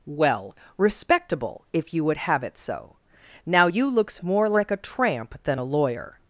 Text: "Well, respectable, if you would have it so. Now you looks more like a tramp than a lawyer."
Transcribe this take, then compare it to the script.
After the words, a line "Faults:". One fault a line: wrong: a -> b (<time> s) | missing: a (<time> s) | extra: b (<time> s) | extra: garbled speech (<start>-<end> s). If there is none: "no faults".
"Well, respectable, if you would have it so. Now you looks more like a tramp than a lawyer."
Faults:
no faults